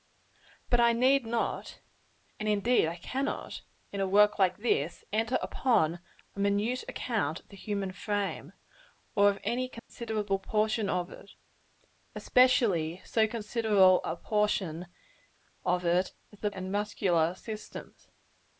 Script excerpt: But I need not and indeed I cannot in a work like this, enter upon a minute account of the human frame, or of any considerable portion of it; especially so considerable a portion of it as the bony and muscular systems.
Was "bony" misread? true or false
true